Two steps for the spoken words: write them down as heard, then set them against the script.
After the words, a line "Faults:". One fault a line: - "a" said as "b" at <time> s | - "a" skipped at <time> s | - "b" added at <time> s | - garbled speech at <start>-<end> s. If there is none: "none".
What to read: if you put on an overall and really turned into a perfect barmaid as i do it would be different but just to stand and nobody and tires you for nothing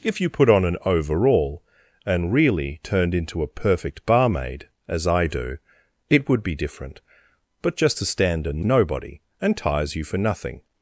if you put on an overall and really turned into a perfect barmaid as i do it would be different but just to stand and nobody and tires you for nothing
Faults:
none